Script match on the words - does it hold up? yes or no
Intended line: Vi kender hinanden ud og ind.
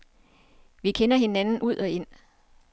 yes